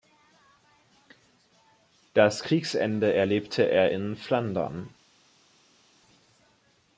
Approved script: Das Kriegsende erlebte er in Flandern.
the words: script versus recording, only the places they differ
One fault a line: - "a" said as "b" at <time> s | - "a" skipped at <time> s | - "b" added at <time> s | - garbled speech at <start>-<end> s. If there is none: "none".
none